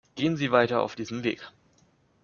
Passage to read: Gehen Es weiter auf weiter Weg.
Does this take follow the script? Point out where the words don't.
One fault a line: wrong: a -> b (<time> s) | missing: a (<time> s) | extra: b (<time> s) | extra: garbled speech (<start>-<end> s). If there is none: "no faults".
wrong: Es -> Sie (0.3 s)
wrong: weiter -> diesem (0.9 s)